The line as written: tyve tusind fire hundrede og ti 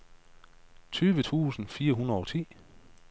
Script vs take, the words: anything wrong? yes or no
no